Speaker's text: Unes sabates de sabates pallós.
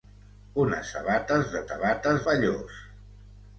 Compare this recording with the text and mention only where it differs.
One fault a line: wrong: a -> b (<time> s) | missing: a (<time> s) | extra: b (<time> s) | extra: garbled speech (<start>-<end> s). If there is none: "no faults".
no faults